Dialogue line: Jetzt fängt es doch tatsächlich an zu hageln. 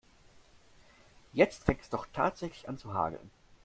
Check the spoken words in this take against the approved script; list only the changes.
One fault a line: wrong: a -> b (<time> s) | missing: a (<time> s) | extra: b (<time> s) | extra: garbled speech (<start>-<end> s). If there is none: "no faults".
no faults